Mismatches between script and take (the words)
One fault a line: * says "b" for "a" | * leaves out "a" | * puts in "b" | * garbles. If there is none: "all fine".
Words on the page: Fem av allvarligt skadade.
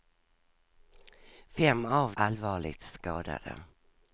all fine